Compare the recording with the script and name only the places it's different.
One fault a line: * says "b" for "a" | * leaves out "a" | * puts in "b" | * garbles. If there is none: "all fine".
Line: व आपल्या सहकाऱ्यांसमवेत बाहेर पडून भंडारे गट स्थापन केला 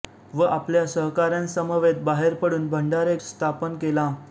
* leaves out "गट"